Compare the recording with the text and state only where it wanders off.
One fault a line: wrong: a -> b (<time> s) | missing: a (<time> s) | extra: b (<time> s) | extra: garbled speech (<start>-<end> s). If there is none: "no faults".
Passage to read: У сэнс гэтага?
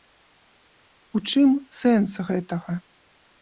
extra: чым (1.3 s)